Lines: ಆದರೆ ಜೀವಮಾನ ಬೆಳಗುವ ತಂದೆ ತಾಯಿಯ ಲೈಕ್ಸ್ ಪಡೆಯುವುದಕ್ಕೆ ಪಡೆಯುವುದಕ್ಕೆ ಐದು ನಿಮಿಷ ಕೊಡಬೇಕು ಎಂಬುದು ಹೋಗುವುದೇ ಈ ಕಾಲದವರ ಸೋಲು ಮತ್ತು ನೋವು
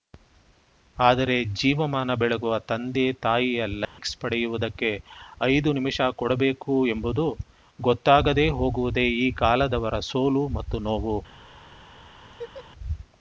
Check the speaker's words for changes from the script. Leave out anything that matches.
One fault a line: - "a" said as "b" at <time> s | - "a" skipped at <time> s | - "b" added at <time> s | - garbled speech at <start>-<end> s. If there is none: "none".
- "ಪಡೆಯುವುದಕ್ಕೆ" skipped at 4.9 s
- "ಗೊತ್ತಾಗದೇ" added at 7.8 s